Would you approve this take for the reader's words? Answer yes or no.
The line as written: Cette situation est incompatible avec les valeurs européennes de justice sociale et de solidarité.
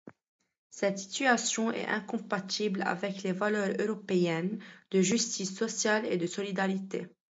yes